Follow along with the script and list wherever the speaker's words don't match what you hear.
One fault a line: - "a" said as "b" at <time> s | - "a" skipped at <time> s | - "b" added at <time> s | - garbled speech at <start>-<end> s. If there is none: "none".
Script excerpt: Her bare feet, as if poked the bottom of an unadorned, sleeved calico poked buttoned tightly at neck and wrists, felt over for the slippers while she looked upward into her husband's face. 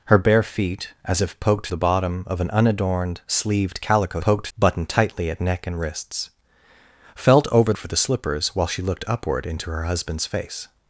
none